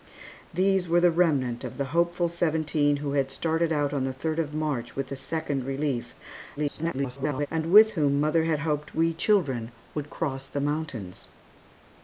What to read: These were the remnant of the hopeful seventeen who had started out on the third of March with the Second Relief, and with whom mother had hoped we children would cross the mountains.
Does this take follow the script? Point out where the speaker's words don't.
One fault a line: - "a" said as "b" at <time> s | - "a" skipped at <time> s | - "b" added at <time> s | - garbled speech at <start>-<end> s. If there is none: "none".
- garbled speech at 6.6-7.5 s